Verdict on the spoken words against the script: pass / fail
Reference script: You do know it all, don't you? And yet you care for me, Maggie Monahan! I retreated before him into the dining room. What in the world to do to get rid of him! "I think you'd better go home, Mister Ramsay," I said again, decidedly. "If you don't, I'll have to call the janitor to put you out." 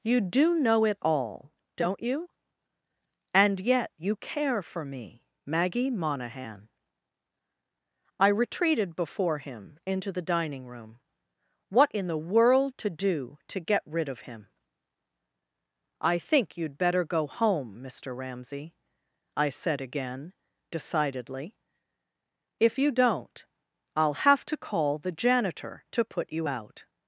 pass